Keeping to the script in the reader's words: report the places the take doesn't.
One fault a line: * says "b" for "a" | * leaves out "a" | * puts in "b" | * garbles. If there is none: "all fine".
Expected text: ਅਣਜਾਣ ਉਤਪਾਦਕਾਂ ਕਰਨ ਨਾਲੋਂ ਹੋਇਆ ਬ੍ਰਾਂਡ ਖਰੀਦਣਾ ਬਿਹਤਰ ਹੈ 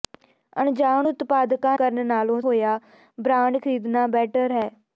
all fine